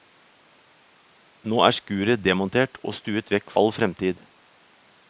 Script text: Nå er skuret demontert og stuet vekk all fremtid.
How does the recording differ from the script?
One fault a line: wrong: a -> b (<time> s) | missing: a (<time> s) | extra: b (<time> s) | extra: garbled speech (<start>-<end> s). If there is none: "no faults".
no faults